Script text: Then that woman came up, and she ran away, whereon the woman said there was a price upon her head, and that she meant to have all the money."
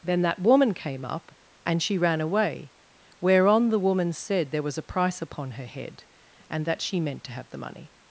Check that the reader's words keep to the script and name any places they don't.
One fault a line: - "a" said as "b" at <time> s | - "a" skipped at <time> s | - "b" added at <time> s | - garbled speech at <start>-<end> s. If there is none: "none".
- "all" skipped at 7.5 s